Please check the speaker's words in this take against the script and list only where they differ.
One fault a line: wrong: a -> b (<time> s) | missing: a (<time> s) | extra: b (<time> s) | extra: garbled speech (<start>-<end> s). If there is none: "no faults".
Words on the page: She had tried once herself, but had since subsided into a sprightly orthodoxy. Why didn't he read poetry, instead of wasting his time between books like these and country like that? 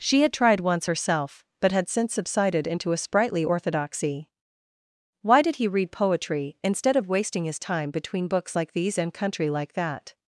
wrong: didn't -> did (5.4 s)